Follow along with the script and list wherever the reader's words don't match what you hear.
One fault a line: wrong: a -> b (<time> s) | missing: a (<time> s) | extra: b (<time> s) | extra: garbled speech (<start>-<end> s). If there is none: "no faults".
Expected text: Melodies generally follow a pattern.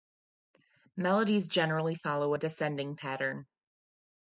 extra: descending (2.4 s)